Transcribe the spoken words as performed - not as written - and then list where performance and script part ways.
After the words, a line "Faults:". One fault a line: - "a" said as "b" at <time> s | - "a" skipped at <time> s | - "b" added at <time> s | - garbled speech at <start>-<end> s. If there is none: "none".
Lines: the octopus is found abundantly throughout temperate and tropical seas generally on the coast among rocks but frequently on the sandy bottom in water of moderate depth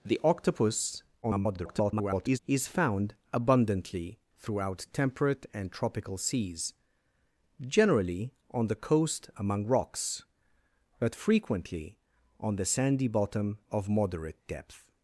the octopus [garbled] is found abundantly throughout temperate and tropical seas generally on the coast among rocks but frequently on the sandy bottom of moderate depth
Faults:
- garbled speech at 1.2-2.4 s
- "in water" skipped at 13.6 s